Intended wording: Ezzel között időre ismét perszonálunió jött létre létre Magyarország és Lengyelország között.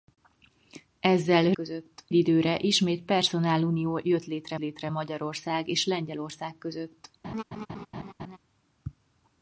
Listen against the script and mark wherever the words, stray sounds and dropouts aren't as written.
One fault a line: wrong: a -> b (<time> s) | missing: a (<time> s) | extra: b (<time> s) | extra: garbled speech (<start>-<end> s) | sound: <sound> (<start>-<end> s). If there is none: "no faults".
sound: laugh (7.2-8.4 s)